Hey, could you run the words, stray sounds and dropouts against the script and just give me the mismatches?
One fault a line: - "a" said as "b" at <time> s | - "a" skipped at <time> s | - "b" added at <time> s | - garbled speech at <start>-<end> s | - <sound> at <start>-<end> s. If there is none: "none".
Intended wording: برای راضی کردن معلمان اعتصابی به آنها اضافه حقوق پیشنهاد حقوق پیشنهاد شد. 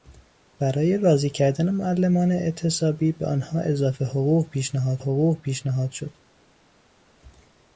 none